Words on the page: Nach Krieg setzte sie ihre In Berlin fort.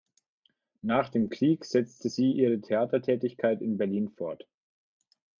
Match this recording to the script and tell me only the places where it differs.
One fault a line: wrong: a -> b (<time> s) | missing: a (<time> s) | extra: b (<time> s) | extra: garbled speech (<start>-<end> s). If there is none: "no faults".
extra: dem (1.1 s)
extra: Theatertätigkeit (2.6 s)